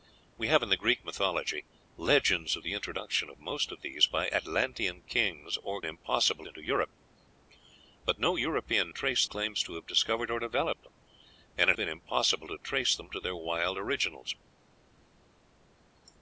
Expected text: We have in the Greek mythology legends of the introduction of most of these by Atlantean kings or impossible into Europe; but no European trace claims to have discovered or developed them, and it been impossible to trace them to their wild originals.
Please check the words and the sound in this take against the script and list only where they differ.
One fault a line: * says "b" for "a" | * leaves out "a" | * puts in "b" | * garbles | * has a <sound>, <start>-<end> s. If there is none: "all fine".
all fine